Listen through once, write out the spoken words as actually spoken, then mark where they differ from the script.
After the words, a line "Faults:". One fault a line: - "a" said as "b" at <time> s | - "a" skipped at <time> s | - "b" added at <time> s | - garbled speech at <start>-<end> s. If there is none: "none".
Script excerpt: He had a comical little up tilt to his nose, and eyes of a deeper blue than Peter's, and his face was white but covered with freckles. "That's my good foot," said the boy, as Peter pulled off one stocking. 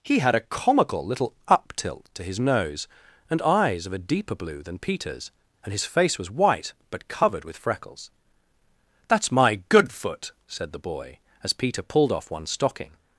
He had a comical little up tilt to his nose, and eyes of a deeper blue than Peter's, and his face was white but covered with freckles. "That's my good foot," said the boy, as Peter pulled off one stocking.
Faults:
none